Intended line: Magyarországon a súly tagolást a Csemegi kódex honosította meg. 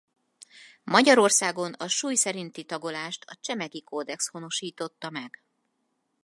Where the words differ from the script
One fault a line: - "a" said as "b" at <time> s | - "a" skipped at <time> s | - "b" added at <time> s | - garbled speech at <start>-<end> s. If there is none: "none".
- "szerinti" added at 2.1 s